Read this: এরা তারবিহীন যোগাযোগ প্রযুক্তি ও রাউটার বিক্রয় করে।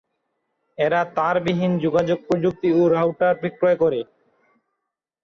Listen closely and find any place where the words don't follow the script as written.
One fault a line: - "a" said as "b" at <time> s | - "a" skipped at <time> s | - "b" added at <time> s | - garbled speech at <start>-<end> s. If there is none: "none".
none